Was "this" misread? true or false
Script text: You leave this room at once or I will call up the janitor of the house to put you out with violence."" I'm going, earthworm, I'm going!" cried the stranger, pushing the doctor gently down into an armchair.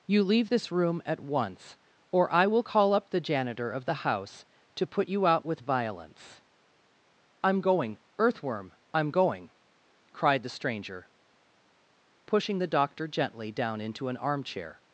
false